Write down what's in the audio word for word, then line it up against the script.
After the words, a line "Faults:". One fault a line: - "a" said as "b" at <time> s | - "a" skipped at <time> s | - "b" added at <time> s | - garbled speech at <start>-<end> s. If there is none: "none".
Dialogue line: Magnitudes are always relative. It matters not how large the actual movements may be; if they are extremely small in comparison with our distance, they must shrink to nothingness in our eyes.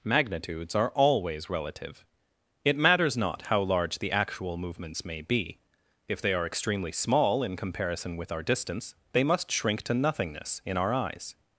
Magnitudes are always relative. It matters not how large the actual movements may be; if they are extremely small in comparison with our distance, they must shrink to nothingness in our eyes.
Faults:
none